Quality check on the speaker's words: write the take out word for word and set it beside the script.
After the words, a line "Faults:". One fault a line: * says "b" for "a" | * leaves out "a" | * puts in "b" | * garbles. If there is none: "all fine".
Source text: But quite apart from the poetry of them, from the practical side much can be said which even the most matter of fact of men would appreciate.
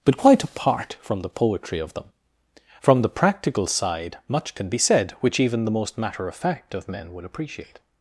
But quite apart from the poetry of them, from the practical side much can be said which even the most matter of fact of men would appreciate.
Faults:
all fine